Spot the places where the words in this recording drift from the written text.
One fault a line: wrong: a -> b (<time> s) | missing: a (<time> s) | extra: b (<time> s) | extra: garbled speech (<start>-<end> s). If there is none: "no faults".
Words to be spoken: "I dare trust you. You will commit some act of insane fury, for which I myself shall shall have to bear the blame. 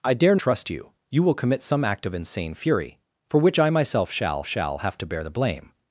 no faults